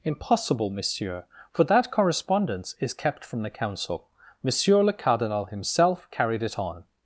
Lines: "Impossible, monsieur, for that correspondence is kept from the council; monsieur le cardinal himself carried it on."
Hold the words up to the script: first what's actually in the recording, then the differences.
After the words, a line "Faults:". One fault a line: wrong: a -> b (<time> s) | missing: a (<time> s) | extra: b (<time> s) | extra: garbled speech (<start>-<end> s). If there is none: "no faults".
"Impossible, monsieur, for that correspondence is kept from the council; monsieur le cardinal himself carried it on."
Faults:
no faults